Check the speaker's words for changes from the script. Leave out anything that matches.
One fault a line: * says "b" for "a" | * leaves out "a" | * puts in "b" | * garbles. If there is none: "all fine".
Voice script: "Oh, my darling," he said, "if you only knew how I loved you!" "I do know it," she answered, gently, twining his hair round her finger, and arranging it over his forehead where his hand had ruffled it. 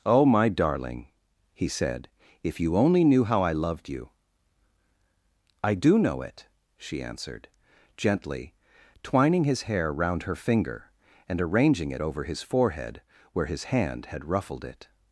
all fine